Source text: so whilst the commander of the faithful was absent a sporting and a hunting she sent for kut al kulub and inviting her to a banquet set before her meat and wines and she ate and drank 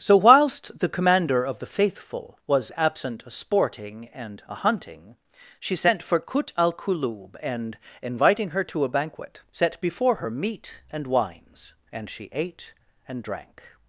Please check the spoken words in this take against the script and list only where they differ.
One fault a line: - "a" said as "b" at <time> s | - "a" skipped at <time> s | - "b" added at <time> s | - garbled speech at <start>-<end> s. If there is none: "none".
none